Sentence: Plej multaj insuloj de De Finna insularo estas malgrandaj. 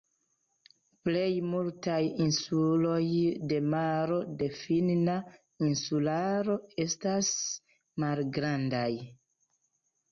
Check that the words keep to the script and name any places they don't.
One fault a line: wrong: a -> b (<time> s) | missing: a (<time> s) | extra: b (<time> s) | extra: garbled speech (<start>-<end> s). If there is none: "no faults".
extra: Maro (3.8 s)